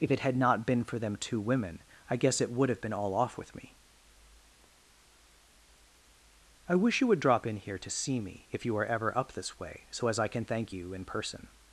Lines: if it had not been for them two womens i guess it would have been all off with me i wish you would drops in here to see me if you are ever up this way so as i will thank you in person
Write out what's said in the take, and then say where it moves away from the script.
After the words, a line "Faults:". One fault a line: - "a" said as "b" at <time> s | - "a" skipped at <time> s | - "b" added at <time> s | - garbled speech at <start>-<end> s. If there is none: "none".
if it had not been for them two women i guess it would have been all off with me i wish you would drop in here to see me if you are ever up this way so as i can thank you in person
Faults:
- "womens" said as "women" at 1.4 s
- "drops" said as "drop" at 7.2 s
- "will" said as "can" at 10.3 s